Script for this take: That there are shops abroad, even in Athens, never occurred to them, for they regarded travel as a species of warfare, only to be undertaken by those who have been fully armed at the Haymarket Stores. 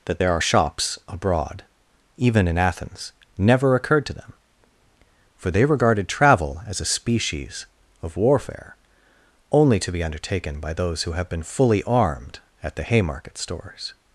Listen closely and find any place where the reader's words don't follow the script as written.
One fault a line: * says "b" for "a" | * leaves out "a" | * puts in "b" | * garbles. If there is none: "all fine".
all fine